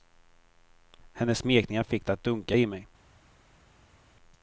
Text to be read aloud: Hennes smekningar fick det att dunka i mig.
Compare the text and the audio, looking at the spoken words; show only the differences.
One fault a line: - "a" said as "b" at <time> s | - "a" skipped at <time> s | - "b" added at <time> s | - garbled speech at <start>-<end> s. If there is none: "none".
none